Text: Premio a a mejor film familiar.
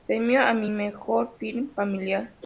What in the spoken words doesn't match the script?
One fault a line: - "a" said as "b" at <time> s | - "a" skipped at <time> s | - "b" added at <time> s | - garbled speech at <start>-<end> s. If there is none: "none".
- "a" skipped at 0.5 s